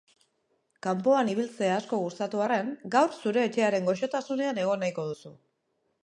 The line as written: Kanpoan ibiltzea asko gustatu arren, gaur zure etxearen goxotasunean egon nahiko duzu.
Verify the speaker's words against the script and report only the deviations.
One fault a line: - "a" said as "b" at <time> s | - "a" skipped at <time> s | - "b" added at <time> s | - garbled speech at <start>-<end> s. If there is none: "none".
none